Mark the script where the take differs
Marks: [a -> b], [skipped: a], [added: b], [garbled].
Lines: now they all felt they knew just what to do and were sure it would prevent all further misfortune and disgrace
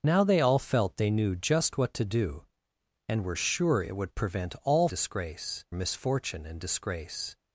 now they all felt they knew just what to do and were sure it would prevent all [further -> disgrace] misfortune and disgrace